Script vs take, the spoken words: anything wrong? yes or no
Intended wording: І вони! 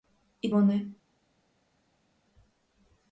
no